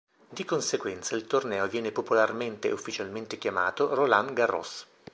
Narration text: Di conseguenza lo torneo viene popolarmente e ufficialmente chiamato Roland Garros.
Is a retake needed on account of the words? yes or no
yes